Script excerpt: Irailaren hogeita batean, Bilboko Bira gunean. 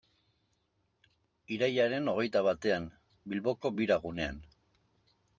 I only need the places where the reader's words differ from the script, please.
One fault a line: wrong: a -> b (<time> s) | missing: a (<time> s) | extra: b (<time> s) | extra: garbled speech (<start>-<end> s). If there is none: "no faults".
no faults